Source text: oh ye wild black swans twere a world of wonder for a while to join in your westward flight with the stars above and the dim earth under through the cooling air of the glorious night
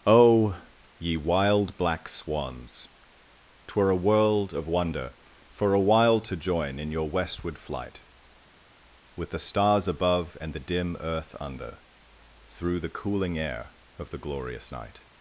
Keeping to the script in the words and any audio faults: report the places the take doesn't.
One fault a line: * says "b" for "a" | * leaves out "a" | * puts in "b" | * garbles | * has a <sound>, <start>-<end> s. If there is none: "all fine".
all fine